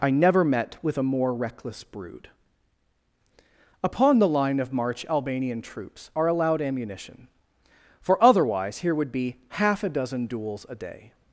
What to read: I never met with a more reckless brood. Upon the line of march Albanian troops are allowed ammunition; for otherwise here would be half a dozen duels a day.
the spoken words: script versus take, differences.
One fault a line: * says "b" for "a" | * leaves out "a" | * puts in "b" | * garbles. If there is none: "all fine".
all fine